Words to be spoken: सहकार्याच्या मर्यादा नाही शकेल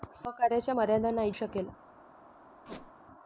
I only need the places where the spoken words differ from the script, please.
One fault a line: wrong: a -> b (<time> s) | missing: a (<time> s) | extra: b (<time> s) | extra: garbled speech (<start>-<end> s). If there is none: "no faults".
no faults